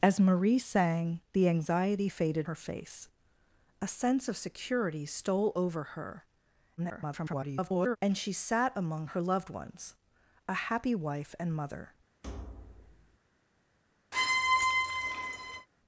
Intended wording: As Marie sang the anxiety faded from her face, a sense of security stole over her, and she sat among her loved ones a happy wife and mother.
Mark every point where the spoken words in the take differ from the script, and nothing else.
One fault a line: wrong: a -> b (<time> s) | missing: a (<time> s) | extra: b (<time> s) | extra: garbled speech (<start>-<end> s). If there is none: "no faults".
missing: from (2.5 s)
extra: garbled speech (6.8-8.0 s)